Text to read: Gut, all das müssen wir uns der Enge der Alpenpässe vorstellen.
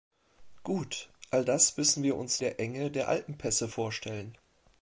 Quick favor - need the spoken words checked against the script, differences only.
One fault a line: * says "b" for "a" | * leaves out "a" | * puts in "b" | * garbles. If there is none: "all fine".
all fine